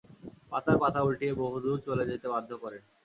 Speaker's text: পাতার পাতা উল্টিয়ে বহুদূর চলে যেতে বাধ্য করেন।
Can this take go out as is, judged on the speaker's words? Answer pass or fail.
pass